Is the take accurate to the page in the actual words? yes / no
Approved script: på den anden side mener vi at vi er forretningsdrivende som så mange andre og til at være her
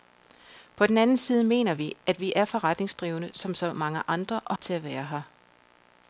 yes